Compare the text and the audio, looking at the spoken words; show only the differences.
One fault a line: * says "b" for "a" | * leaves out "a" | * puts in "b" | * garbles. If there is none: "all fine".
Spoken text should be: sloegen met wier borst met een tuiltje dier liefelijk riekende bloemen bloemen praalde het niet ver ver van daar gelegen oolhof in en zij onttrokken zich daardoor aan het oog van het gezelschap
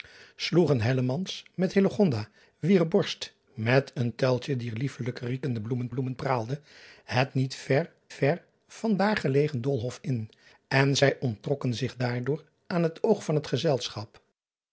all fine